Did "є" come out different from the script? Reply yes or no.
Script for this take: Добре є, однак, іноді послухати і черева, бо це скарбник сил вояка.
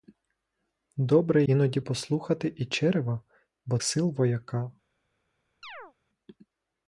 yes